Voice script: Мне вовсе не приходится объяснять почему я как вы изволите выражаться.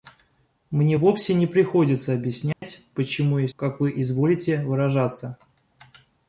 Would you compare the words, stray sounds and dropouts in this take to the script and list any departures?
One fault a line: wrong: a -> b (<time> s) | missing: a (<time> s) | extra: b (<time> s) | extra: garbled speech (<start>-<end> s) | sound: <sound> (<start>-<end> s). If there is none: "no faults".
sound: dropout (2.5-2.6 s)